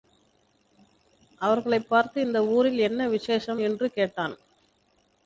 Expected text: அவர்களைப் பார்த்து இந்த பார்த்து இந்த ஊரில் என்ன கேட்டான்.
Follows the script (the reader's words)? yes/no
no